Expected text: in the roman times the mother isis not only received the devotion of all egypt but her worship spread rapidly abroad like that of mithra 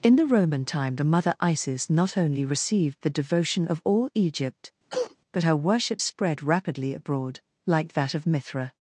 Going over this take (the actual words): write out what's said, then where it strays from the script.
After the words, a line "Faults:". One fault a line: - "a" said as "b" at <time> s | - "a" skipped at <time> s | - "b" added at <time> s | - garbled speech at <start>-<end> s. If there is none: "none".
in the roman time the mother isis not only received the devotion of all egypt but her worship spread rapidly abroad like that of mithra
Faults:
- "times" said as "time" at 0.7 s